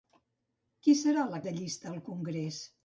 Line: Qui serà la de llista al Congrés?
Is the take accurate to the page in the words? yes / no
yes